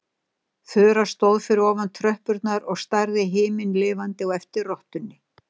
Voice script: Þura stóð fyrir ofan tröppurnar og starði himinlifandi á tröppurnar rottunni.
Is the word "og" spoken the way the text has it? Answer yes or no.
yes